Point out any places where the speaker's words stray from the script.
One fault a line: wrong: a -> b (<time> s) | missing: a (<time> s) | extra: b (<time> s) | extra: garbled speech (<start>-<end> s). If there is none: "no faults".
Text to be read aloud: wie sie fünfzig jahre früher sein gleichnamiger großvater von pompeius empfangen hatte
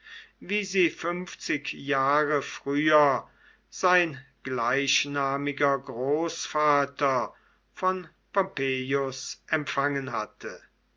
no faults